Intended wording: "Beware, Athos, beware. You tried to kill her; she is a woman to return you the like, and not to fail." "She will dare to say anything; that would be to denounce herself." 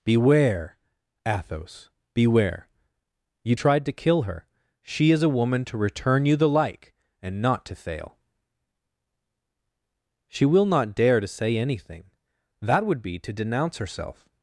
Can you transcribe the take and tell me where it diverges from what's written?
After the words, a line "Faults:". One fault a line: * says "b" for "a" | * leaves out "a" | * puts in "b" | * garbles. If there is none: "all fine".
"Beware, Athos, beware. You tried to kill her; she is a woman to return you the like, and not to fail." "She will not dare to say anything; that would be to denounce herself."
Faults:
* puts in "not"